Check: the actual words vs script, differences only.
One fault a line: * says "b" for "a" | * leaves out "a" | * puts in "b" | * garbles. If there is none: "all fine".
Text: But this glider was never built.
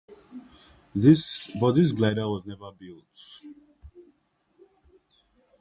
all fine